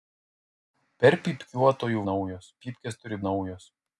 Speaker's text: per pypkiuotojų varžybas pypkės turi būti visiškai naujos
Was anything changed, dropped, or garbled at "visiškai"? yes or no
yes